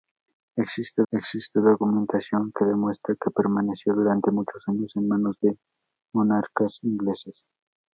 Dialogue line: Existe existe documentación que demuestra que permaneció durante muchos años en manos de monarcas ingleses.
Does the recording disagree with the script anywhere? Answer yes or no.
no